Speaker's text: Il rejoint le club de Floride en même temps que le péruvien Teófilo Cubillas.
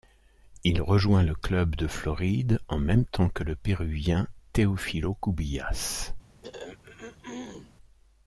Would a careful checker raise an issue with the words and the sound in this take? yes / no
yes